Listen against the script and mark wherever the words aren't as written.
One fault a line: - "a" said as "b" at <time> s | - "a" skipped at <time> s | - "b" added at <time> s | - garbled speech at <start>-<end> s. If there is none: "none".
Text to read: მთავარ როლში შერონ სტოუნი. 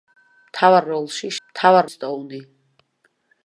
- "შერონ" said as "მთავარ" at 1.5 s